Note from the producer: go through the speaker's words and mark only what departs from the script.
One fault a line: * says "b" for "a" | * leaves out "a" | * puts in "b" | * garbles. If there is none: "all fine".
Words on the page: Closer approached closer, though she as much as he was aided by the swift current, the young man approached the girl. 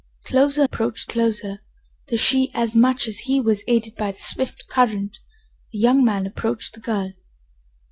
all fine